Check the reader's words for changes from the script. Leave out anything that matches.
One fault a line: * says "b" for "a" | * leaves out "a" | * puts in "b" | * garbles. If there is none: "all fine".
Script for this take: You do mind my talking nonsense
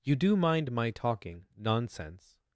all fine